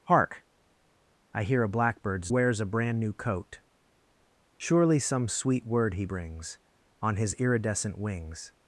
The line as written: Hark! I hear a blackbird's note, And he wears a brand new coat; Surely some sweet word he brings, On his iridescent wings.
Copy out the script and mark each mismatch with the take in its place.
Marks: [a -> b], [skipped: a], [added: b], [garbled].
Hark! I hear a blackbird's [skipped: note, And he] wears a brand new coat; Surely some sweet word he brings, On his iridescent wings.